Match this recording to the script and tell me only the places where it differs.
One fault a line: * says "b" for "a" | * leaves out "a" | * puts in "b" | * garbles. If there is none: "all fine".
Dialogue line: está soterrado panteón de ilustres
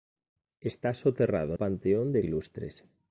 all fine